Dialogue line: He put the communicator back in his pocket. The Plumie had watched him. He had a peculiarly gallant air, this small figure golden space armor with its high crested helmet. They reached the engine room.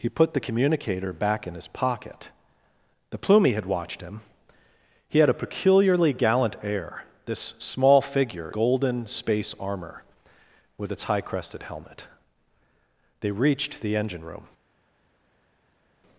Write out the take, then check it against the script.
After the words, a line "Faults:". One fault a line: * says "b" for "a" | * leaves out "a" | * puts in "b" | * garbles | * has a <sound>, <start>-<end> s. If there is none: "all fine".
He put the communicator back in his pocket. The Plumie had watched him. He had a peculiarly gallant air, this small figure golden space armor with its high crested helmet. They reached the engine room.
Faults:
all fine